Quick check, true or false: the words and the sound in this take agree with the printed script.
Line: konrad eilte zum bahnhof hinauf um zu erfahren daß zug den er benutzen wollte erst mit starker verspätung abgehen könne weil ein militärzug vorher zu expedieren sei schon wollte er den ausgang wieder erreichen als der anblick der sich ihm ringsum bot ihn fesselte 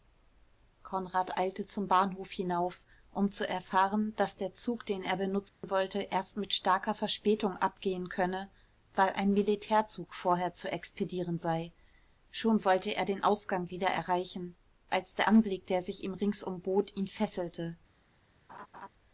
false